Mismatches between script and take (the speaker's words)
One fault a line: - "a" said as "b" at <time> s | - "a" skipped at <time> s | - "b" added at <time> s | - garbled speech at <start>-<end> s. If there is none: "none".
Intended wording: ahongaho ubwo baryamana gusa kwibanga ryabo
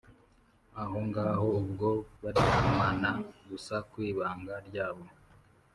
none